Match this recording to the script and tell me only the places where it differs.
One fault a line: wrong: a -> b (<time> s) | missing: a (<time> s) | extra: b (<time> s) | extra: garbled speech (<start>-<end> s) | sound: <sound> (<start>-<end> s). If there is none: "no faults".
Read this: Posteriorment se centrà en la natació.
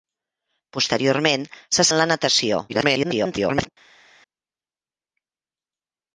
missing: centrà (1.9 s)
extra: garbled speech (2.7-3.7 s)